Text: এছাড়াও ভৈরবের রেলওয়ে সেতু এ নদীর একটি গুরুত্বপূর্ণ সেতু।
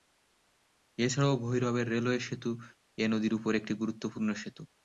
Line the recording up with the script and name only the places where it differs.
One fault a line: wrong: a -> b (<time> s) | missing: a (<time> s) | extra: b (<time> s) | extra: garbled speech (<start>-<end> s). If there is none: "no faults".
extra: উপর (3.4 s)